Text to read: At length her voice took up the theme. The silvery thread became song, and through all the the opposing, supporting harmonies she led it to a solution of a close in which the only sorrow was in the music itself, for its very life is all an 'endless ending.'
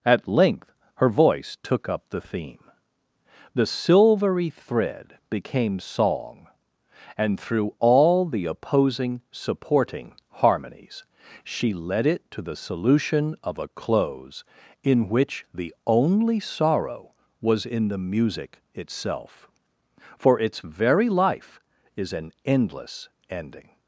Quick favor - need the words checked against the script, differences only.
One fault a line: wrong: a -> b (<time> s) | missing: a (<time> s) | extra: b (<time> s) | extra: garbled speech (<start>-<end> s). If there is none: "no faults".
missing: the (8.4 s)
wrong: a -> the (12.4 s)
missing: all (22.1 s)